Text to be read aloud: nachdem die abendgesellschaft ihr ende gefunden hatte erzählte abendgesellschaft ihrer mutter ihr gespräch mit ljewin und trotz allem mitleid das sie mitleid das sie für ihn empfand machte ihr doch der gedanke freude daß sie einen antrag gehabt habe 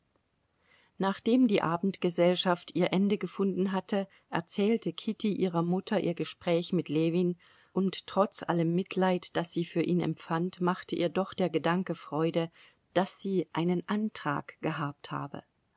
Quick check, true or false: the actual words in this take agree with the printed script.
false